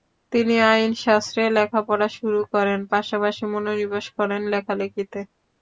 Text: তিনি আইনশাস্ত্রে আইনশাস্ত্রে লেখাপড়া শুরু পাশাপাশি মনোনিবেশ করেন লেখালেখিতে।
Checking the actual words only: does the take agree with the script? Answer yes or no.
no